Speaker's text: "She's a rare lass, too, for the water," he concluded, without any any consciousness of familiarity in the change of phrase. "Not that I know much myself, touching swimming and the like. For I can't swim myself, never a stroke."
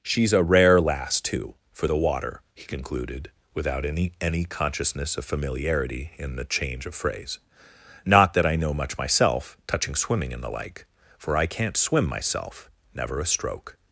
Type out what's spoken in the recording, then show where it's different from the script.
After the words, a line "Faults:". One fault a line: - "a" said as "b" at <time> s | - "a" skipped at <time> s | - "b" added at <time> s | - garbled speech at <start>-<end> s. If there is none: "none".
"She's a rare lass, too, for the water," he concluded, without any any consciousness of familiarity in the change of phrase. "Not that I know much myself, touching swimming and the like. For I can't swim myself, never a stroke."
Faults:
none